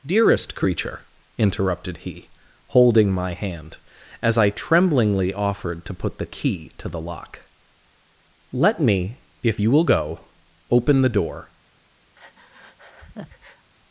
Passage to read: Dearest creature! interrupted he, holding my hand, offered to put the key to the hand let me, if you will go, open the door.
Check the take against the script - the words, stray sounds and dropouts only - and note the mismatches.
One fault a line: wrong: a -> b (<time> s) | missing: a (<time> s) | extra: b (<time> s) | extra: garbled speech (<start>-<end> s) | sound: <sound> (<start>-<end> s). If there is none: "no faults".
extra: as I tremblingly (4.2 s)
wrong: hand -> lock (7.0 s)
sound: breath (12.2-13.7 s)